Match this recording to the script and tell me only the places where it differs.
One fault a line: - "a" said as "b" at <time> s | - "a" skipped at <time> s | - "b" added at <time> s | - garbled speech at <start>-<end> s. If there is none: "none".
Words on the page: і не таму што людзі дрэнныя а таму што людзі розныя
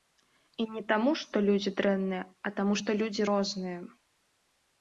none